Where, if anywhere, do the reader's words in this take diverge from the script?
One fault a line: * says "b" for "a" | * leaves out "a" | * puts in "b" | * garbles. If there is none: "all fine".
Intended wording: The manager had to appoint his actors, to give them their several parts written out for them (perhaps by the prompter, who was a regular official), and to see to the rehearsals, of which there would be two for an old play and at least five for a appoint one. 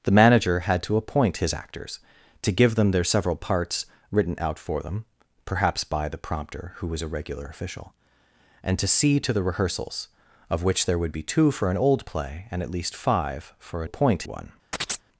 all fine